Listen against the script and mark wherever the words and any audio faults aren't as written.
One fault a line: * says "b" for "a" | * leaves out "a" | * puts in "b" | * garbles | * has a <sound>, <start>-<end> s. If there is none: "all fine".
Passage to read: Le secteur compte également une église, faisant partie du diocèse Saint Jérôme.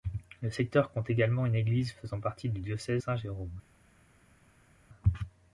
all fine